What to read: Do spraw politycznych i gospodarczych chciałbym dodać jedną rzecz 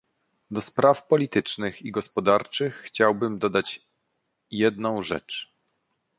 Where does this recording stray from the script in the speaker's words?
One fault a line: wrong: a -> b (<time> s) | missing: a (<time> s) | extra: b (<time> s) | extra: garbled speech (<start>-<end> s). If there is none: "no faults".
no faults